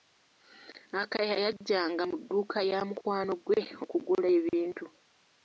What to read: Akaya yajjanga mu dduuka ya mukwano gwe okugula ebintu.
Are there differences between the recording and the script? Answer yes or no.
no